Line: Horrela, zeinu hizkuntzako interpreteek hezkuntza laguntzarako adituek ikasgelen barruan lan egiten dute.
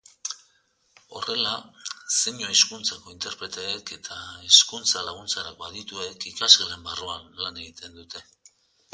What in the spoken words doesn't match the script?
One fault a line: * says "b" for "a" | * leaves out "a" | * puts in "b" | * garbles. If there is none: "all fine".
* puts in "eta"